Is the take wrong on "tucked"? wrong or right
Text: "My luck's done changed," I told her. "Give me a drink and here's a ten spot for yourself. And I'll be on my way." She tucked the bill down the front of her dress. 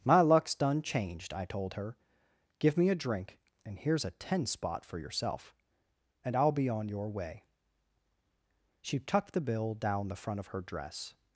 right